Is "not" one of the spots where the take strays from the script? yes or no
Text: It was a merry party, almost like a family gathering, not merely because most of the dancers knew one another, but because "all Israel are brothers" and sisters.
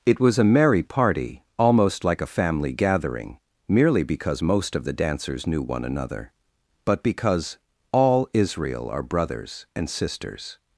yes